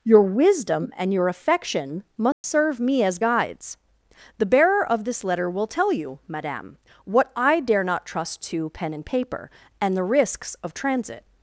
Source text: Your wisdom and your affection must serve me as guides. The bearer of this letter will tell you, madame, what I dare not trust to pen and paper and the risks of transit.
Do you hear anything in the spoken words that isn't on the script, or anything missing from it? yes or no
no